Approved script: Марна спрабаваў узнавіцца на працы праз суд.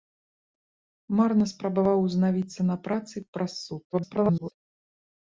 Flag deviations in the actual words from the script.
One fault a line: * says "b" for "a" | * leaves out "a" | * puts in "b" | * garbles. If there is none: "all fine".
* garbles